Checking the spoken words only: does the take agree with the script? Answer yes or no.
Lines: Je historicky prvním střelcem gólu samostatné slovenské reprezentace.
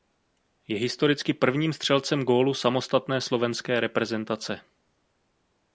yes